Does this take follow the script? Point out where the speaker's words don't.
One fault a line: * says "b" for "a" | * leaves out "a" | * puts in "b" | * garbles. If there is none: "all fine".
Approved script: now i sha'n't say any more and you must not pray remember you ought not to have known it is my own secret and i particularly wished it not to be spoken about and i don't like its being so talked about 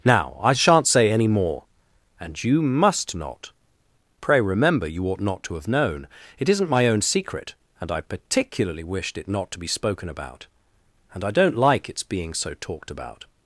* says "isn't" for "is"